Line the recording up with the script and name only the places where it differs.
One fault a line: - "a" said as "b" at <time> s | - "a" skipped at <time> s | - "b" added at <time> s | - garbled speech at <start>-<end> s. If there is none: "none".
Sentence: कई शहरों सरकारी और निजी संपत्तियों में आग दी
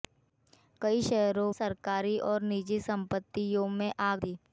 none